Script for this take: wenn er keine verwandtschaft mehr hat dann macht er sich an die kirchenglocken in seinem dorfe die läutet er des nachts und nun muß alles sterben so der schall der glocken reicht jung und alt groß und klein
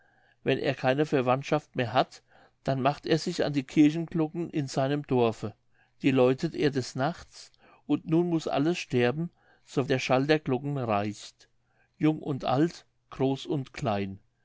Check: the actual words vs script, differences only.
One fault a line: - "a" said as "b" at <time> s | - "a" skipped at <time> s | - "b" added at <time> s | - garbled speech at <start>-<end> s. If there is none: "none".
none